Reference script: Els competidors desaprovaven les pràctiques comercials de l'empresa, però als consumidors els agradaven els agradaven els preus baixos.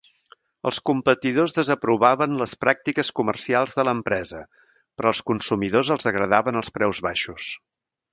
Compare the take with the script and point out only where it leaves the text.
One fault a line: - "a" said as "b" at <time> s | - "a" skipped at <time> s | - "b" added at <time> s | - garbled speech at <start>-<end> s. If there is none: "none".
- "agradaven els" skipped at 6.8 s